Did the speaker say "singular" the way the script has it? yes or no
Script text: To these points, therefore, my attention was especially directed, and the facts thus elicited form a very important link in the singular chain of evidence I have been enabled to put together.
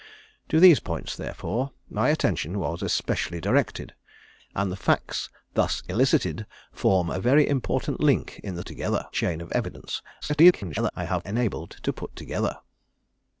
no